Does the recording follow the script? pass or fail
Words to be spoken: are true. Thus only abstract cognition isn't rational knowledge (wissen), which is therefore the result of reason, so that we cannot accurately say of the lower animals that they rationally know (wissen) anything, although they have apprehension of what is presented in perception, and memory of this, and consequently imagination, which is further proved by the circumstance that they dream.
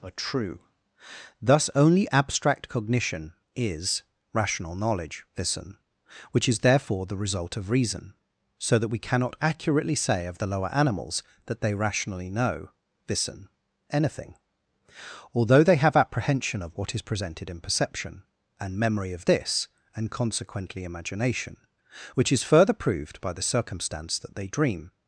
fail